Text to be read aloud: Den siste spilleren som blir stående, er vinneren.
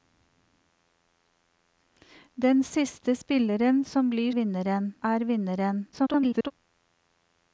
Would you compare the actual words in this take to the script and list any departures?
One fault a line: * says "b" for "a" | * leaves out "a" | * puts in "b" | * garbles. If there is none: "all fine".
* says "vinneren" for "stående"
* garbles